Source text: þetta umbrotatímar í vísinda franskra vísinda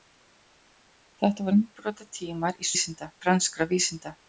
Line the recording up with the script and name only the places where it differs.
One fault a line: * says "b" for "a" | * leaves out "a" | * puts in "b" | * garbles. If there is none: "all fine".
all fine